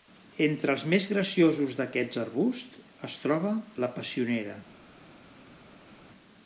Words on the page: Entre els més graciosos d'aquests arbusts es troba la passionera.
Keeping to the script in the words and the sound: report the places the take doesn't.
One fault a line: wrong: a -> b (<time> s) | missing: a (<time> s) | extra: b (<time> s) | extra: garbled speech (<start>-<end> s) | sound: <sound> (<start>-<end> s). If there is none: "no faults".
no faults